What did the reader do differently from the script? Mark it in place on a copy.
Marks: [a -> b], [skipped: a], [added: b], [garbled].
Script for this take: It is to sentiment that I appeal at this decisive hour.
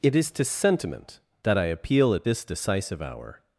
It is to sentiment that I appeal at this decisive hour.